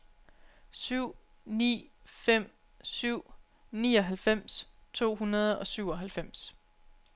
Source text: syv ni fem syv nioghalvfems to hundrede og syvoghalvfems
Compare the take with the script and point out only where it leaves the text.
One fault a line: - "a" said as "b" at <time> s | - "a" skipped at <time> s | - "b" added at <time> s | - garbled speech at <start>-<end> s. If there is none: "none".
none